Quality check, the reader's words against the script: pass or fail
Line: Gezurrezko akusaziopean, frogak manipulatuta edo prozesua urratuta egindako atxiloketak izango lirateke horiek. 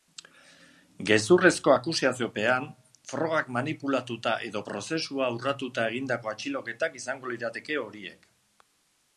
pass